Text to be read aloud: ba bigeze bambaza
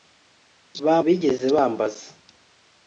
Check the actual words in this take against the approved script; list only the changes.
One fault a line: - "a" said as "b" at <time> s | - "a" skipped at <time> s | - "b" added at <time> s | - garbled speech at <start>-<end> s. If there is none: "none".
none